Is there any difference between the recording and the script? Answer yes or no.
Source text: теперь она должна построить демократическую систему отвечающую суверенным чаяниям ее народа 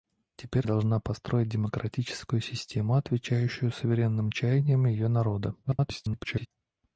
yes